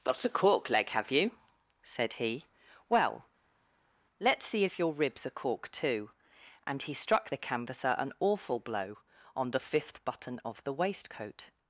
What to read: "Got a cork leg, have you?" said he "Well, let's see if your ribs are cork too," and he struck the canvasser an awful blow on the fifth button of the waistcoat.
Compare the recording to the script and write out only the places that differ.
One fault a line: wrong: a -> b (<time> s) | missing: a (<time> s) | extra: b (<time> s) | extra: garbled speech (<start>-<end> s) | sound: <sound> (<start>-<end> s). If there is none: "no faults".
no faults